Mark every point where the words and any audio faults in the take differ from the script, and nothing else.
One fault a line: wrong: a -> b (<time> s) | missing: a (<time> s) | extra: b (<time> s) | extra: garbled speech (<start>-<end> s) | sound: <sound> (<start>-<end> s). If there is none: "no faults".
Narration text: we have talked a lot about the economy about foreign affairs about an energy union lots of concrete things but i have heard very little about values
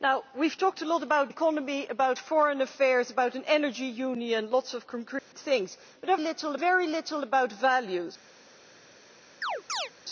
missing: the (1.3 s)
sound: dropout (5.2-5.3 s)
wrong: heard -> little (6.2 s)
sound: chirp (9.4-9.9 s)